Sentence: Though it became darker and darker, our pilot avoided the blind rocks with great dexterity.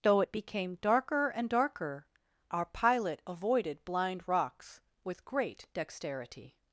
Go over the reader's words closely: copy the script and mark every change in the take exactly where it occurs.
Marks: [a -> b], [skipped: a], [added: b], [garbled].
Though it became darker and darker, our pilot avoided [skipped: the] blind rocks with great dexterity.